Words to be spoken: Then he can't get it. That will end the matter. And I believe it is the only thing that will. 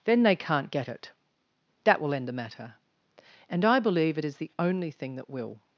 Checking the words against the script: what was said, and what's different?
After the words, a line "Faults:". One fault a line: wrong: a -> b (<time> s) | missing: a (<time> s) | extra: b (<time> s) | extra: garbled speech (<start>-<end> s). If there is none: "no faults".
Then they can't get it. That will end the matter. And I believe it is the only thing that will.
Faults:
wrong: he -> they (0.2 s)